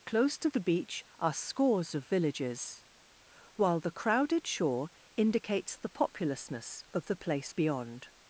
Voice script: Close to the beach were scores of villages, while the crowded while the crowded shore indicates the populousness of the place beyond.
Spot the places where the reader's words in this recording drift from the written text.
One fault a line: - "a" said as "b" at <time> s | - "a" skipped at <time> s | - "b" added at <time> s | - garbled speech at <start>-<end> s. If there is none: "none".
- "were" said as "are" at 1.2 s
- "while the crowded" skipped at 4.5 s